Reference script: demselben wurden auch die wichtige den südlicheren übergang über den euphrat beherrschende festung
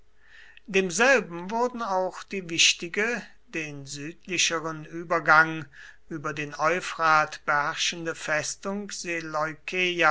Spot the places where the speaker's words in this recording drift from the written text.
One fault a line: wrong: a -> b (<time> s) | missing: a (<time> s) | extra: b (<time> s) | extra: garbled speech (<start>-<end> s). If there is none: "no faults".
no faults